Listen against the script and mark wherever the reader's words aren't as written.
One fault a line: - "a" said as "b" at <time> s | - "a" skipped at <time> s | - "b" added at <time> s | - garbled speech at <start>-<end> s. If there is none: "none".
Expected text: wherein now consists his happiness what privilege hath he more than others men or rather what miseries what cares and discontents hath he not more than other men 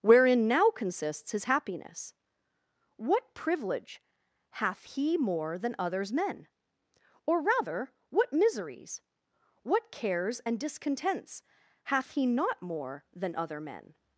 none